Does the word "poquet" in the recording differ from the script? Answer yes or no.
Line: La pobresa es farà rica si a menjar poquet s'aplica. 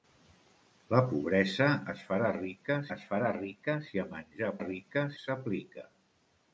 yes